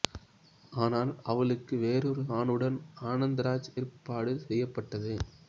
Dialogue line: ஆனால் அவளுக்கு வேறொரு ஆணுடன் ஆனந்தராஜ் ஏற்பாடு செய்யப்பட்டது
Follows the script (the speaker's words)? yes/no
yes